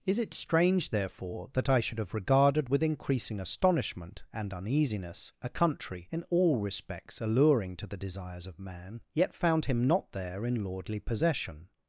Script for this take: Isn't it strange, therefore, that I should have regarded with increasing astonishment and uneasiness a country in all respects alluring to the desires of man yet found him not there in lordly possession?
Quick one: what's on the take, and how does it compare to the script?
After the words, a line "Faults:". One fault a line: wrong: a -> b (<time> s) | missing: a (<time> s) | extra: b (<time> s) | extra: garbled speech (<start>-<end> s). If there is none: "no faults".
Is it strange, therefore, that I should have regarded with increasing astonishment and uneasiness a country in all respects alluring to the desires of man yet found him not there in lordly possession?
Faults:
wrong: Isn't -> Is (0.1 s)